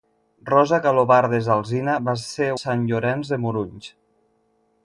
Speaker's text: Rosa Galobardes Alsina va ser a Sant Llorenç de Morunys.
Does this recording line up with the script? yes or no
yes